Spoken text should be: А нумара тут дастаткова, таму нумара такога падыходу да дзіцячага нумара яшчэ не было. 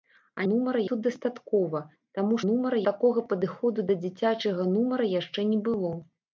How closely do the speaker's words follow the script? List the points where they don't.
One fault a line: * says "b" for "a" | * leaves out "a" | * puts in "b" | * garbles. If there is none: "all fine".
all fine